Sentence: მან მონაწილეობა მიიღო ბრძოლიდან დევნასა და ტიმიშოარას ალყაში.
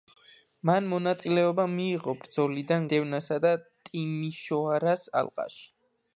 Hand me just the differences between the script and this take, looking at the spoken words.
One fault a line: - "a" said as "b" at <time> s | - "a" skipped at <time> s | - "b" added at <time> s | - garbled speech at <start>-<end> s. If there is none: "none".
none